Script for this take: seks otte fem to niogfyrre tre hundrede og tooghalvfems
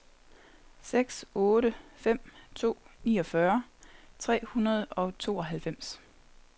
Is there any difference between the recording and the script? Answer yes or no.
no